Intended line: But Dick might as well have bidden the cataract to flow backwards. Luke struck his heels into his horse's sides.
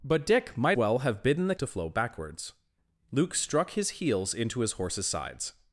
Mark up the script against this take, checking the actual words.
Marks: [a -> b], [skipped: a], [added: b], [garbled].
But Dick might [skipped: as] well have bidden the [skipped: cataract] to flow backwards. Luke struck his heels into his horse's sides.